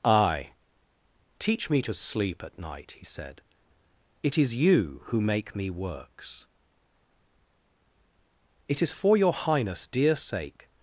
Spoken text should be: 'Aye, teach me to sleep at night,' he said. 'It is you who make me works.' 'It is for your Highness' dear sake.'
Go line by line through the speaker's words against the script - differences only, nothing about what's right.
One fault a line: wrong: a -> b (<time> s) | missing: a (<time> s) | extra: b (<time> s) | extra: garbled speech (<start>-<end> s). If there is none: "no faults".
no faults